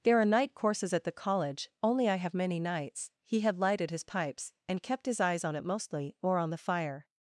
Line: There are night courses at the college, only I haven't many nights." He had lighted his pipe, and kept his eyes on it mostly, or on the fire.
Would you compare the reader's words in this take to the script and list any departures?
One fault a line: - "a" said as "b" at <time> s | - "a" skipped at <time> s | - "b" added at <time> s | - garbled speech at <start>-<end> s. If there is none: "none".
- "haven't" said as "have" at 2.1 s
- "pipe" said as "pipes" at 4.0 s